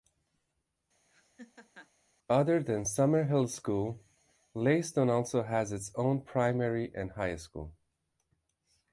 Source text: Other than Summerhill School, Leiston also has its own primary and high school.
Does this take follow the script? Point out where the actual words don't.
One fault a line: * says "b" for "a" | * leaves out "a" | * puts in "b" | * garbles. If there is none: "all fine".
all fine